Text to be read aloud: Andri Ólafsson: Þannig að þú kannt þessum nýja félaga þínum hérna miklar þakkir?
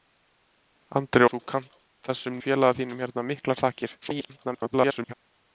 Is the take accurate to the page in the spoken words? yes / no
no